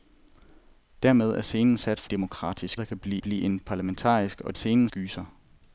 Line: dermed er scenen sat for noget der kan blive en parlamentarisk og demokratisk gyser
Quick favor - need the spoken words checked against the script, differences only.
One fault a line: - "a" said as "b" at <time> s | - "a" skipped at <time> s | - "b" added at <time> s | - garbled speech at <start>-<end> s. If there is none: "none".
- "noget" said as "demokratisk" at 2.1 s
- "blive" added at 3.2 s
- "demokratisk" said as "scenen" at 4.5 s